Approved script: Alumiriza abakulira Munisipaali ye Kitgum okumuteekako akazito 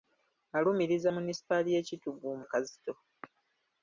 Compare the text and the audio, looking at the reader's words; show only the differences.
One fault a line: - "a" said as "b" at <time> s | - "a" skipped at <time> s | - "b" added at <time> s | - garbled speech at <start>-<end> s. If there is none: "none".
- "abakulira" skipped at 1.1 s
- "okumuteekako" skipped at 2.4 s